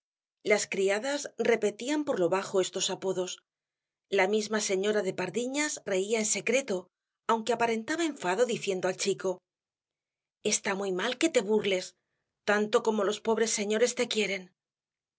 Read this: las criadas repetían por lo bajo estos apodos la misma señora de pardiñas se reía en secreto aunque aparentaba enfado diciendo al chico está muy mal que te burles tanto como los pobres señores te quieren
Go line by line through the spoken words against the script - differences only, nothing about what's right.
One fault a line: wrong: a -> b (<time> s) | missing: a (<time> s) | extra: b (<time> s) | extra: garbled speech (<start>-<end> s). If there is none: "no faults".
missing: se (5.8 s)